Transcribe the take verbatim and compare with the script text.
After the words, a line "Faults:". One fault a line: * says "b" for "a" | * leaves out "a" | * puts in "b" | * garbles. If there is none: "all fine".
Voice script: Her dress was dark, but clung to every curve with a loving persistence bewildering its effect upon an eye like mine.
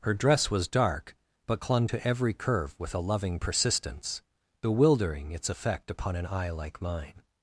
Her dress was dark, but clung to every curve with a loving persistence bewildering its effect upon an eye like mine.
Faults:
all fine